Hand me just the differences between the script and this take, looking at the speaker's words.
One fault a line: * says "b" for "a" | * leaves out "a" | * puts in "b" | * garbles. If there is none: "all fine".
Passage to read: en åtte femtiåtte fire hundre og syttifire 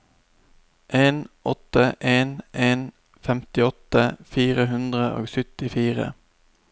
* puts in "en en"